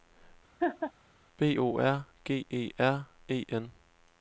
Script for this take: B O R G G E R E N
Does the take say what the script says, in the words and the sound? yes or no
no